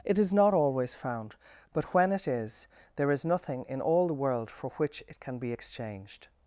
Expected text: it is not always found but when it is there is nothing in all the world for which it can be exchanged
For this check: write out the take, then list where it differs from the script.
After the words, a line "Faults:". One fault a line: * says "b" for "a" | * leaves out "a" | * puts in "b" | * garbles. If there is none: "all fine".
it is not always found but when it is there is nothing in all the world for which it can be exchanged
Faults:
all fine